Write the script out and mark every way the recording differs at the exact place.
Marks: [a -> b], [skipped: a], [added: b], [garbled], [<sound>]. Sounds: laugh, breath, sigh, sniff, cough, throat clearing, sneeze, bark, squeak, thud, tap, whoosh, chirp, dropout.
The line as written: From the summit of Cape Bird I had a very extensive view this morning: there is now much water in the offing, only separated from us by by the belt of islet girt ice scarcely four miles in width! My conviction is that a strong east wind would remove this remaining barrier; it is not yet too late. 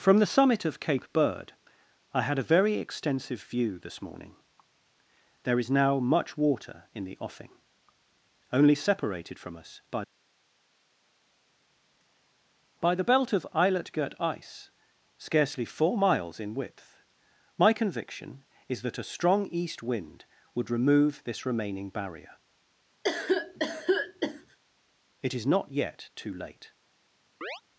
From the summit of Cape Bird I had a very extensive view this morning: there is now much water in the offing, only separated from us by by the belt of islet girt ice scarcely four miles in width! My conviction is that a strong east wind would remove this remaining barrier; [cough] it is not yet too late. [chirp]